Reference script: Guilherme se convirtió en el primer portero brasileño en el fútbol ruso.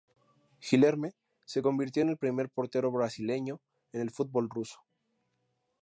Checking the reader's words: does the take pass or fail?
pass